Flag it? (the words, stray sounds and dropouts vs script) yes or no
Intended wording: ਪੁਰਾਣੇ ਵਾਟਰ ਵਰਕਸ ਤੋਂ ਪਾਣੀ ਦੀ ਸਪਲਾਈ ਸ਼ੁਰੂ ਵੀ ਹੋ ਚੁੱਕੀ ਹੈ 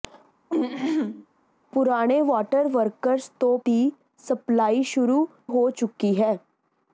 yes